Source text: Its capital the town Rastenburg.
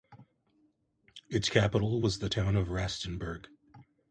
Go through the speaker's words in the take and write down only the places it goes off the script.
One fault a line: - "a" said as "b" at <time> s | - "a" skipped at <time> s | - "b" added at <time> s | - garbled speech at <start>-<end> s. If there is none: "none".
- "was" added at 2.0 s
- "of" added at 2.5 s